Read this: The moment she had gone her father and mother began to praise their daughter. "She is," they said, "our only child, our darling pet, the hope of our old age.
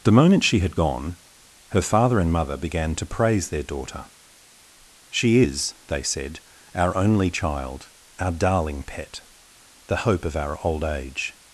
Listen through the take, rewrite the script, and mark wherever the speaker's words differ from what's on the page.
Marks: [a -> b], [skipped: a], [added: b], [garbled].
The moment she had gone her father and mother began to praise their daughter. "She is," they said, "our only child, our darling pet, the hope of our old age.